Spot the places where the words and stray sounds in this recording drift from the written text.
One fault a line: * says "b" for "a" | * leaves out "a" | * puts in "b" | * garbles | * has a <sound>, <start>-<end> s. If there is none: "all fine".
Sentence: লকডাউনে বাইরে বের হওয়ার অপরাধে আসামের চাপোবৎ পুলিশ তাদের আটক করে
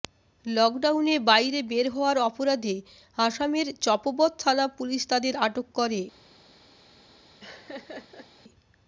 * puts in "থানা"
* has a laugh, 7.4-8.3 s